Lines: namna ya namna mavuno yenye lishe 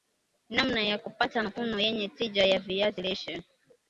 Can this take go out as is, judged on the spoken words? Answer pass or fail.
fail